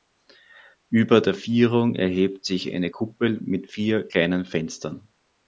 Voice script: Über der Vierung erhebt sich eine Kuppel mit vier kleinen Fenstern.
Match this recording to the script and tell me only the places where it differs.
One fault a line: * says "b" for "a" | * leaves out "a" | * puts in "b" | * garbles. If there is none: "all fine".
all fine